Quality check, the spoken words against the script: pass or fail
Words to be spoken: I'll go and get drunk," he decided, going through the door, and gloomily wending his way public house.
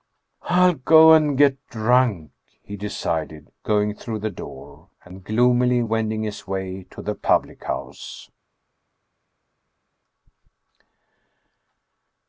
fail